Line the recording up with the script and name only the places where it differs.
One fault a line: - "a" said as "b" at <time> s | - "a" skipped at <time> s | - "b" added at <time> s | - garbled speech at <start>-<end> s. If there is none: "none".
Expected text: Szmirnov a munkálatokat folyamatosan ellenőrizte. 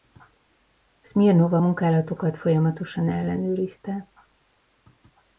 none